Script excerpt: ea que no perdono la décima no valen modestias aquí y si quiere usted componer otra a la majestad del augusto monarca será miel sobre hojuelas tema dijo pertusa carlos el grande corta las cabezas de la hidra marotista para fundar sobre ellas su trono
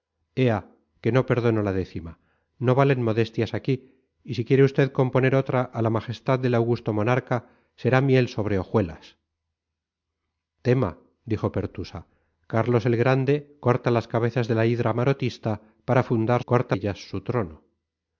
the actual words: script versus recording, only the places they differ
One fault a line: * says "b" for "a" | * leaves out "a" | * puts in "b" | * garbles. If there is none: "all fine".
* says "corta" for "sobre"